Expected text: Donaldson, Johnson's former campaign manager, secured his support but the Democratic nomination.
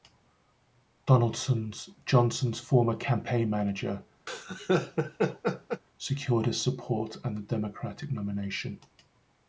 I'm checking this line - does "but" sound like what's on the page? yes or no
no